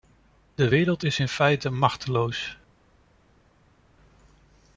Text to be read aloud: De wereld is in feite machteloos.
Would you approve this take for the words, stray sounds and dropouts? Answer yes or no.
yes